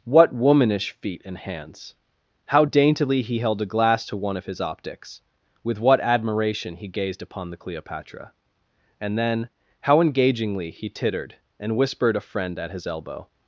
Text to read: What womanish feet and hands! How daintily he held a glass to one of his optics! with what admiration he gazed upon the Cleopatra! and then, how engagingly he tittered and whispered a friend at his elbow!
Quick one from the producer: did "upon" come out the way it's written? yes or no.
yes